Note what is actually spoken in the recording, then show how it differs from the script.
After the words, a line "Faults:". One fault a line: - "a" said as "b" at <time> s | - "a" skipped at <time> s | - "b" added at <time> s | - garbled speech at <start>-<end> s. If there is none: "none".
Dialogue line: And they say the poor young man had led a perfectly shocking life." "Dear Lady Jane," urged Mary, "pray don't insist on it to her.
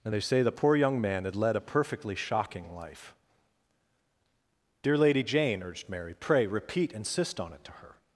And they say the poor young man had led a perfectly shocking life." "Dear Lady Jane," urged Mary, "pray repeat insist on it to her.
Faults:
- "don't" said as "repeat" at 6.4 s